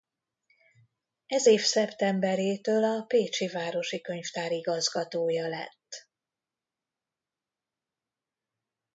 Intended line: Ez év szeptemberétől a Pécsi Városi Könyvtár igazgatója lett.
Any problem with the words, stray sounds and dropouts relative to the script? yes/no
no